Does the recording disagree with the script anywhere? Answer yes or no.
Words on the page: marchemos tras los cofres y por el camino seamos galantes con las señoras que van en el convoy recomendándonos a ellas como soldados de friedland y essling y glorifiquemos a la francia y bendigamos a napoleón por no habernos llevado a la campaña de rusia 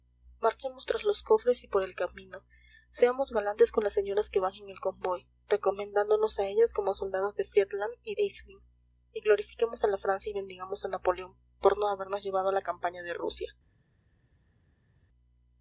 no